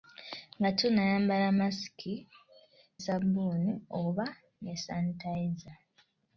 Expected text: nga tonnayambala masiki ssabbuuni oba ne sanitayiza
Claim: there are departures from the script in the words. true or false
false